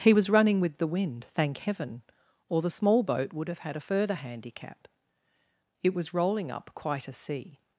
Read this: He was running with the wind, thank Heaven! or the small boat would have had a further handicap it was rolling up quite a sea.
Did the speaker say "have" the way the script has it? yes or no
yes